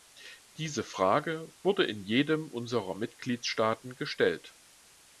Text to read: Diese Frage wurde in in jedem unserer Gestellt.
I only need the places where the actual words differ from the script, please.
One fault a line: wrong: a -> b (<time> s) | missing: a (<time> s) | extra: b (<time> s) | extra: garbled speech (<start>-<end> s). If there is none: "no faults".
missing: in (2.0 s)
extra: Mitgliedstaaten (2.9 s)